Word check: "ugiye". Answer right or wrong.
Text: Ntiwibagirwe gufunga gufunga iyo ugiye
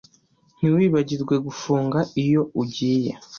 right